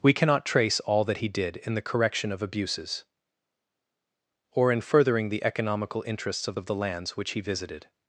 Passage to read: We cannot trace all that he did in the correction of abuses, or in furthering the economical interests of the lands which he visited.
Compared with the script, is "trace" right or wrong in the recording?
right